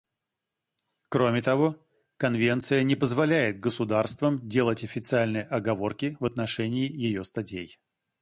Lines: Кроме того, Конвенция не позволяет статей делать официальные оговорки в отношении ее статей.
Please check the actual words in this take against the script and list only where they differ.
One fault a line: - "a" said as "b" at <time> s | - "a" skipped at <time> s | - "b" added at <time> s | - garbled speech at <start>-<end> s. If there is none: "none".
- "статей" said as "государствам" at 3.6 s